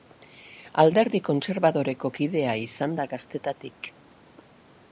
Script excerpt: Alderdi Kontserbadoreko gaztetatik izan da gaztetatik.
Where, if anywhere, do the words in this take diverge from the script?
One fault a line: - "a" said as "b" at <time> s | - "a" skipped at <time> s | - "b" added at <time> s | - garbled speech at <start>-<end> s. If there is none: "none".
- "gaztetatik" said as "kidea" at 2.2 s